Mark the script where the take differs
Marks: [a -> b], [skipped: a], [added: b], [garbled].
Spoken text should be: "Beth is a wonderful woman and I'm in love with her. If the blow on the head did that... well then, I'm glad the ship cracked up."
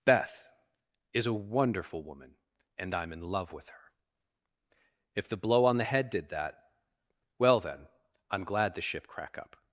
"Beth is a wonderful woman and I'm in love with her. If the blow on the head did that... well then, I'm glad the ship [cracked -> crack] up."